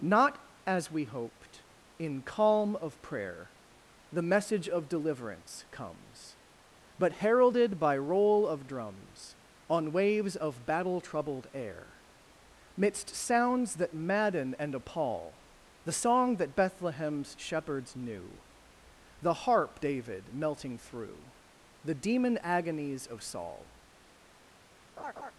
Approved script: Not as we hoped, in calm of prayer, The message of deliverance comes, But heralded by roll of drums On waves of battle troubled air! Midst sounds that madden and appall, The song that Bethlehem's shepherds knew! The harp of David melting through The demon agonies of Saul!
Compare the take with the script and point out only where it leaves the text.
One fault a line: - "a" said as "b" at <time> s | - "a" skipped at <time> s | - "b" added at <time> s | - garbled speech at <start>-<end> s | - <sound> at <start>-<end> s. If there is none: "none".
- "of" skipped at 19.8 s
- laugh at 25.0-25.3 s